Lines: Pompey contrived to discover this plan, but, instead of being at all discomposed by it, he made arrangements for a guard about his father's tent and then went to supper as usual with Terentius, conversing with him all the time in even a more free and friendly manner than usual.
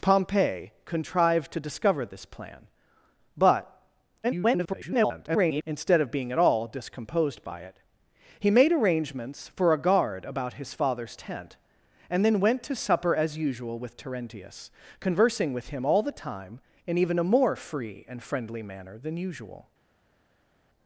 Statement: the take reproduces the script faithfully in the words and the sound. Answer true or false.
false